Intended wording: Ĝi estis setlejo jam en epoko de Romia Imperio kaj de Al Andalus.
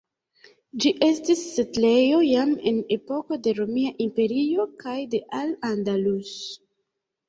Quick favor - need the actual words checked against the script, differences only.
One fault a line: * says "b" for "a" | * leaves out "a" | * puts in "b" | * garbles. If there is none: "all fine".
all fine